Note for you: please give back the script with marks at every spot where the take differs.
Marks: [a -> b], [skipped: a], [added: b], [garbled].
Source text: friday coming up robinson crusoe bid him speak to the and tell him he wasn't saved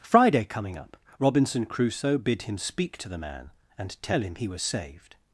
friday coming up robinson crusoe bid him speak to the [added: man] and tell him he [wasn't -> was] saved